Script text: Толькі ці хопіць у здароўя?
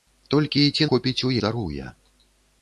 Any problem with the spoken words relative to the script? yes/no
no